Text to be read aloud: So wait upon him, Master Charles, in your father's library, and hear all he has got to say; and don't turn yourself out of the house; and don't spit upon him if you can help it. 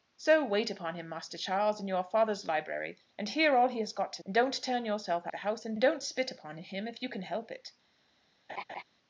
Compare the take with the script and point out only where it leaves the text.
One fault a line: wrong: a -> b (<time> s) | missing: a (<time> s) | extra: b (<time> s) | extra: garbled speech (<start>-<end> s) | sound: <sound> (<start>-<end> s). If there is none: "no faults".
missing: say (4.2 s)
missing: out (5.3 s)
sound: laugh (8.5-8.8 s)